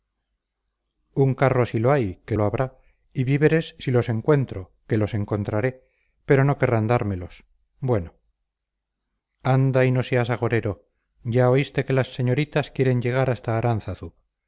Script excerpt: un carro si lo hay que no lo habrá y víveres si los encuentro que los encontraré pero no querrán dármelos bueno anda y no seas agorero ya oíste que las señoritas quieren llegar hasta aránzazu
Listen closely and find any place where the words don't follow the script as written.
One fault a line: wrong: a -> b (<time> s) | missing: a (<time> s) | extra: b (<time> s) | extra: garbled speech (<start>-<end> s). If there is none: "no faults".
missing: no (2.4 s)